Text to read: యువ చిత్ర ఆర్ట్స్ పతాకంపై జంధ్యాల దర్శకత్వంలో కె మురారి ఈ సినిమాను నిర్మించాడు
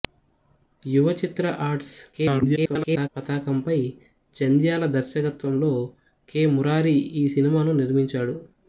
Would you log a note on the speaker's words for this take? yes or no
yes